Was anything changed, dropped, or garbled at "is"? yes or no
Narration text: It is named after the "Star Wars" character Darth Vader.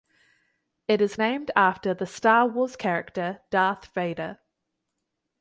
no